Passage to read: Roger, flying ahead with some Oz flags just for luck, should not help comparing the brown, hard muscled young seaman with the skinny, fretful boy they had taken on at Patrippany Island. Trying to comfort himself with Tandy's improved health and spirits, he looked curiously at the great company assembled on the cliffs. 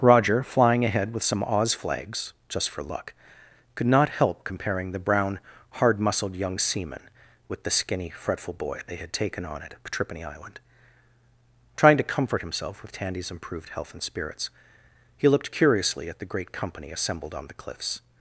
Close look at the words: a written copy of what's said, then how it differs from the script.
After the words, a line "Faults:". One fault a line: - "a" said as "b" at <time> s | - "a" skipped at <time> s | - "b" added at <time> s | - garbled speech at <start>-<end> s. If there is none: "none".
Roger, flying ahead with some Oz flags just for luck, could not help comparing the brown, hard muscled young seaman with the skinny, fretful boy they had taken on at Patrippany Island. Trying to comfort himself with Tandy's improved health and spirits, he looked curiously at the great company assembled on the cliffs.
Faults:
- "should" said as "could" at 3.8 s